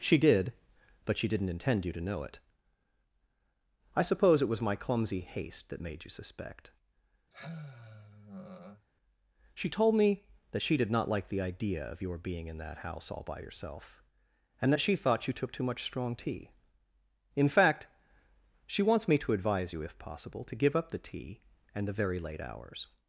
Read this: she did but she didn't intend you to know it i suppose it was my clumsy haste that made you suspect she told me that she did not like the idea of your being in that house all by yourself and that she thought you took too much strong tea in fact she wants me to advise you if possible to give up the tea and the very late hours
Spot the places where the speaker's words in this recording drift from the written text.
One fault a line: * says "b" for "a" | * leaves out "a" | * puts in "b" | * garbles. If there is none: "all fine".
all fine